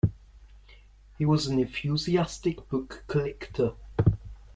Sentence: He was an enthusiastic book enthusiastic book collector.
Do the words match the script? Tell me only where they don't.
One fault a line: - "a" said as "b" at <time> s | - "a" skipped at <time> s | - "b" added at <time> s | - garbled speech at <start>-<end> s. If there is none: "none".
- "enthusiastic book" skipped at 3.0 s